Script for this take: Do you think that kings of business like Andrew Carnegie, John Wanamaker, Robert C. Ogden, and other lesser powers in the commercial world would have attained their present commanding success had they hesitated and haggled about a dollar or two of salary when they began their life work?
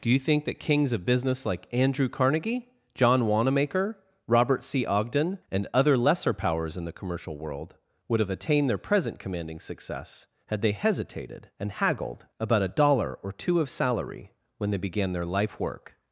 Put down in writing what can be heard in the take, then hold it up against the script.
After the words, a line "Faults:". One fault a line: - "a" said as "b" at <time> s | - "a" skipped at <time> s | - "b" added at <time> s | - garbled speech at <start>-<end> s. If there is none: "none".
Do you think that kings of business like Andrew Carnegie, John Wanamaker, Robert C. Ogden, and other lesser powers in the commercial world would have attained their present commanding success had they hesitated and haggled about a dollar or two of salary when they began their life work?
Faults:
none